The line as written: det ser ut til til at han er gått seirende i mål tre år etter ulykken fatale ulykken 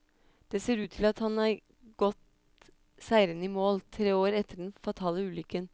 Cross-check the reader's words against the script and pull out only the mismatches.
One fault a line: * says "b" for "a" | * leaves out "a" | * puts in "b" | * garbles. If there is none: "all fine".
* leaves out "til"
* says "den" for "ulykken"